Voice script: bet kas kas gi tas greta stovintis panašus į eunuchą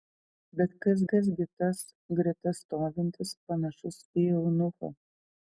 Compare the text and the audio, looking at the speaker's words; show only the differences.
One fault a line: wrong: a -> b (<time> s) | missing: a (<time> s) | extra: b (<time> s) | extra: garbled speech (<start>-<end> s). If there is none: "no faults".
no faults